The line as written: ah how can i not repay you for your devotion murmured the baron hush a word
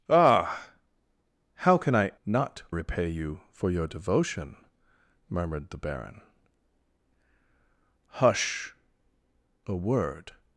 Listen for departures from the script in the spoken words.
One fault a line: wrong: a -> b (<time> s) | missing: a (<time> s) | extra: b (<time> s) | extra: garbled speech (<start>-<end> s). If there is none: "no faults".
no faults